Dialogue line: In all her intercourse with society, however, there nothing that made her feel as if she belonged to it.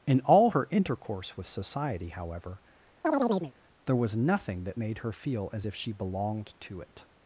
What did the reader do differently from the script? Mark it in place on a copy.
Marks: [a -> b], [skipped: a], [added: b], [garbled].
In all her intercourse with society, however, there [added: was] nothing that made her feel as if she belonged to it.